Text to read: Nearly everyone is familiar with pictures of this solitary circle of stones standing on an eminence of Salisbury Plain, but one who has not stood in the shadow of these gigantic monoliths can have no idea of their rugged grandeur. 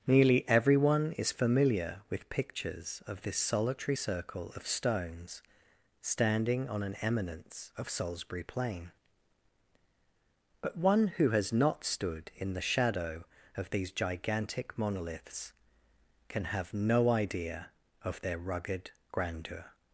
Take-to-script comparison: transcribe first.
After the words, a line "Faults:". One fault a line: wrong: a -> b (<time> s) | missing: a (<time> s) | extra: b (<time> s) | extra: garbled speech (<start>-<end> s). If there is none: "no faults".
Nearly everyone is familiar with pictures of this solitary circle of stones standing on an eminence of Salisbury Plain, but one who has not stood in the shadow of these gigantic monoliths can have no idea of their rugged grandeur.
Faults:
no faults